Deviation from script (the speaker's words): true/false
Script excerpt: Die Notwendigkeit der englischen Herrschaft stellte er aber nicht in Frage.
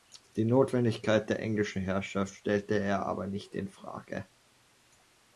false